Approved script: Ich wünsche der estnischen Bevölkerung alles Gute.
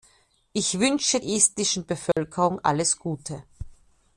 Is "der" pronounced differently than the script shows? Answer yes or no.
yes